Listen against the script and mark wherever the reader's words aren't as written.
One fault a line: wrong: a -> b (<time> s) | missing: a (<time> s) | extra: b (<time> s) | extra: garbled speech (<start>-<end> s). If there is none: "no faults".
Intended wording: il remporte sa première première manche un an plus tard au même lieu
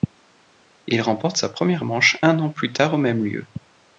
missing: première (1.9 s)